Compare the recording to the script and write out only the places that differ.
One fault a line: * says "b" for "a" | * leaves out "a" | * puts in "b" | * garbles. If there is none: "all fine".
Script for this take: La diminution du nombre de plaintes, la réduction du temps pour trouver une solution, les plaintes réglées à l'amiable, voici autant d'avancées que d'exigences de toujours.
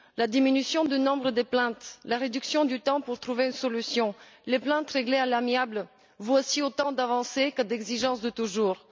all fine